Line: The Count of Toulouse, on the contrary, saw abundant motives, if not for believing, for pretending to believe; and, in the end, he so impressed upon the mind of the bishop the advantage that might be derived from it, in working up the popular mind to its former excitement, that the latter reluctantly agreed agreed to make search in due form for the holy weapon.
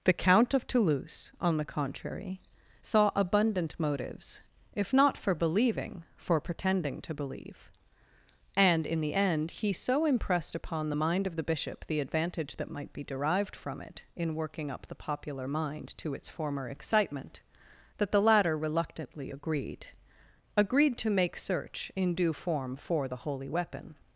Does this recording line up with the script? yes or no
yes